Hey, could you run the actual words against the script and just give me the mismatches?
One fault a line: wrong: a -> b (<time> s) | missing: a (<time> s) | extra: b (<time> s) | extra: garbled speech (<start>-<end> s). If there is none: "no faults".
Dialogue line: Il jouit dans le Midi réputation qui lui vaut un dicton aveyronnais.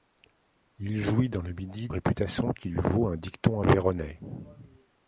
no faults